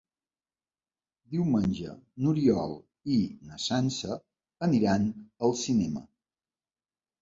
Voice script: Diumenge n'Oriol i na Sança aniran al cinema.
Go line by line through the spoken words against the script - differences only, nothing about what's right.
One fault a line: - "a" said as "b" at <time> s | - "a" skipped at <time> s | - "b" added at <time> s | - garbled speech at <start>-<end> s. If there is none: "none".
none